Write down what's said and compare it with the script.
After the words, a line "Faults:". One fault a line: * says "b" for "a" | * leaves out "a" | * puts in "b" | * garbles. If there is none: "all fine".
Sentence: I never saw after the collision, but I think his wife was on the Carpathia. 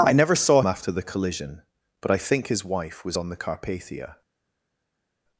I never saw after the collision, but I think his wife was on the Carpathia.
Faults:
all fine